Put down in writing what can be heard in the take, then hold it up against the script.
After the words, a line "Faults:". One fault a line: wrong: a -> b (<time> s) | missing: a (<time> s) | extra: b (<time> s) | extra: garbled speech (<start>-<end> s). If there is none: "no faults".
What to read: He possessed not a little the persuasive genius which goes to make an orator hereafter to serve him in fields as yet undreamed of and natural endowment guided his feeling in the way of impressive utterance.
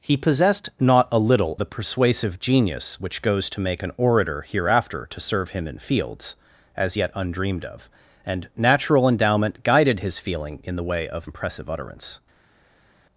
He possessed not a little the persuasive genius which goes to make an orator hereafter to serve him in fields as yet undreamed of and natural endowment guided his feeling in the way of impressive utterance.
Faults:
no faults